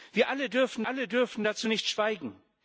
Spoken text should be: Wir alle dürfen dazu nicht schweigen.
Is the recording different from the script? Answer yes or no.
yes